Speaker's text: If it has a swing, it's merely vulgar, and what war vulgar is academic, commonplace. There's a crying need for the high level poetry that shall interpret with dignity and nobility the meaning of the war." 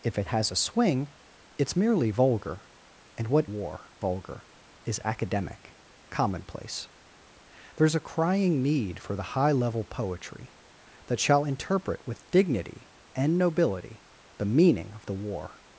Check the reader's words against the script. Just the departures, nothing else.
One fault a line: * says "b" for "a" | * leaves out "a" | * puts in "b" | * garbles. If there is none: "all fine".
all fine